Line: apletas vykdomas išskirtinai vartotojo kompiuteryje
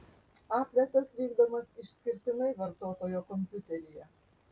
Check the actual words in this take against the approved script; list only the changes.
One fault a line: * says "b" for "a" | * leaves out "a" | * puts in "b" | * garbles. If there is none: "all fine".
all fine